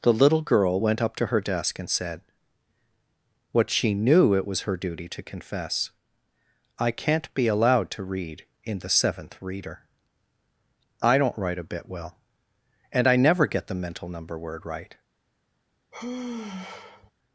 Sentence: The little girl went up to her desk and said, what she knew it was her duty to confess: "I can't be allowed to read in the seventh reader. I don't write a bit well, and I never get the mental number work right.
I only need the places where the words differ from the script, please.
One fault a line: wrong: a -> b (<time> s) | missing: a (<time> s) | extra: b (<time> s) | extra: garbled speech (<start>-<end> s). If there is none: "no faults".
wrong: work -> word (14.4 s)